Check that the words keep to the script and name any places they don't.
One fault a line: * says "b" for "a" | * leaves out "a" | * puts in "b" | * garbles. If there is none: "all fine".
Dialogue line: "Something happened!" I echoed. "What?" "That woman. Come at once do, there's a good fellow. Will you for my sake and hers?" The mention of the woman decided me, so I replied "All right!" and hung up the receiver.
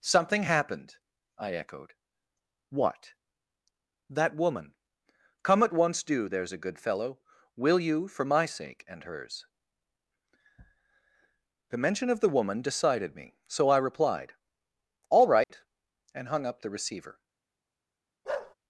all fine